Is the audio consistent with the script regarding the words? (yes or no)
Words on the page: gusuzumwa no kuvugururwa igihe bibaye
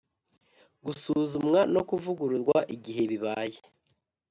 yes